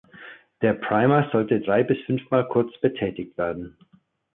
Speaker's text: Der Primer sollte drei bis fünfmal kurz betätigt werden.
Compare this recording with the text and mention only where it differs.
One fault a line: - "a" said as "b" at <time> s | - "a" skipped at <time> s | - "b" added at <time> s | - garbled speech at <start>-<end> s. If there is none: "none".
none